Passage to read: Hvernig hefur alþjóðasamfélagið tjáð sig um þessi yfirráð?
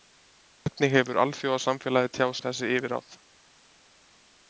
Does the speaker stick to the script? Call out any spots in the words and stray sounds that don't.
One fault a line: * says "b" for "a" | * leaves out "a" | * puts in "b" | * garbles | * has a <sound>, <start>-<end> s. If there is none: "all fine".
* leaves out "sig"